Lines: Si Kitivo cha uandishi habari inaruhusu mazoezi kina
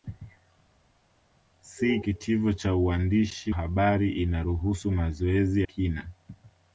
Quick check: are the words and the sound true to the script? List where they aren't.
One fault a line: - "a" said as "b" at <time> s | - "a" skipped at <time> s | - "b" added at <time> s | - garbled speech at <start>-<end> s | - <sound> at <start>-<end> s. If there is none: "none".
none